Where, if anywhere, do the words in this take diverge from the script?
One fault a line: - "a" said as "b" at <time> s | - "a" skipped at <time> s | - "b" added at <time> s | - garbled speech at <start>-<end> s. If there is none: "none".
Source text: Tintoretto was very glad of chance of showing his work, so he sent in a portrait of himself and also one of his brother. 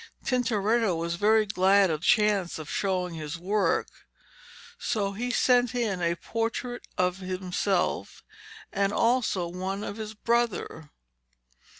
none